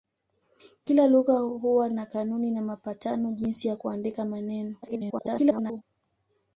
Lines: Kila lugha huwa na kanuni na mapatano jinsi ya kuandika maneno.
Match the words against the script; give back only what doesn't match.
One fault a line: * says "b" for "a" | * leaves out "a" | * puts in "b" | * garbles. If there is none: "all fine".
* garbles